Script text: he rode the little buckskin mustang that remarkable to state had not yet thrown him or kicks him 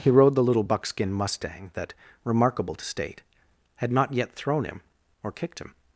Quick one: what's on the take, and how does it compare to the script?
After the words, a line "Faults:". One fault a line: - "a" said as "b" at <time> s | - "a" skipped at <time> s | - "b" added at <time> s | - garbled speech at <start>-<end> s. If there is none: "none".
he rode the little buckskin mustang that remarkable to state had not yet thrown him or kicked him
Faults:
- "kicks" said as "kicked" at 5.3 s